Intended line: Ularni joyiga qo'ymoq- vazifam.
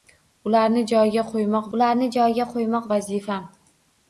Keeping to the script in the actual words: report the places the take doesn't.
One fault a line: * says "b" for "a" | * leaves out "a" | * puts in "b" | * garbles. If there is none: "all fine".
* puts in "ularni joyiga qo'ymoq"